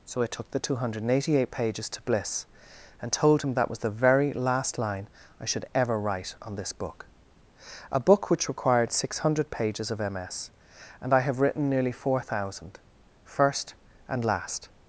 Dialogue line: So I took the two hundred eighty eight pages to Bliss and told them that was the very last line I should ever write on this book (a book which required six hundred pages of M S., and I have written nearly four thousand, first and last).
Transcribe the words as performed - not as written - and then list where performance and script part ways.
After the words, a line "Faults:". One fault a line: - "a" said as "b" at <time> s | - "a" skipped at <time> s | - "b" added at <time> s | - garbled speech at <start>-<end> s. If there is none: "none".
So I took the two hundred eighty eight pages to Bliss and told him that was the very last line I should ever write on this book (a book which required six hundred pages of M S., and I have written nearly four thousand, first and last).
Faults:
- "them" said as "him" at 3.4 s